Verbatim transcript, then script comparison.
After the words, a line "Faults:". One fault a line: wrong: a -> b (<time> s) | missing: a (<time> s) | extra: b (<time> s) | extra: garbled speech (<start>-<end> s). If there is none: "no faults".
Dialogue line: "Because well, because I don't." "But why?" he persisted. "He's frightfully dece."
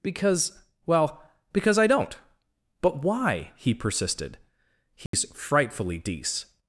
"Because well, because I don't." "But why?" he persisted. "He's frightfully dece."
Faults:
no faults